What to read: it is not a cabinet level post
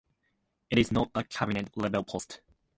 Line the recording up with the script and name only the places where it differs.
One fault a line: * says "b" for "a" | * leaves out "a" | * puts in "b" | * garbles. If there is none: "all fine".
all fine